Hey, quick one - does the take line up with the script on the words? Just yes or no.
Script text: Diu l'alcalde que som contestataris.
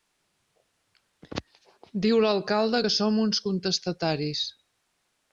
no